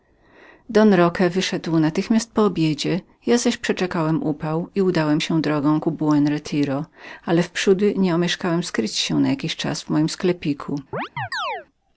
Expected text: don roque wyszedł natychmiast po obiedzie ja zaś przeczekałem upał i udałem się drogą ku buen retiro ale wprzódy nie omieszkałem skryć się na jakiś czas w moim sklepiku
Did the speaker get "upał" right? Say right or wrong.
right